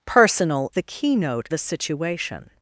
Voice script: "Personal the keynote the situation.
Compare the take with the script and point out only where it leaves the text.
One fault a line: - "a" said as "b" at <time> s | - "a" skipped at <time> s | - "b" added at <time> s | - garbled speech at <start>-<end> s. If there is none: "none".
none